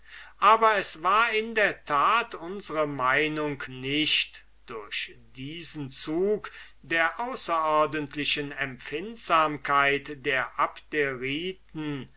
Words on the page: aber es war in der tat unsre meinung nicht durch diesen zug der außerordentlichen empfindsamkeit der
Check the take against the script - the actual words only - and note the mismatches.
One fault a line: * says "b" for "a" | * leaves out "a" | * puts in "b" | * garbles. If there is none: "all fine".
all fine